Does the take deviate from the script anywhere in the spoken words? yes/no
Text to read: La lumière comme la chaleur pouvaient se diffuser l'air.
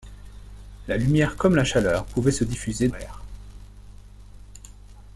no